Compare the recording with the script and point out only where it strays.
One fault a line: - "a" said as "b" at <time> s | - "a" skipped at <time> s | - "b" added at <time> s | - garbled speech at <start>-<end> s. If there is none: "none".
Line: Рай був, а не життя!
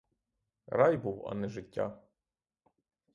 none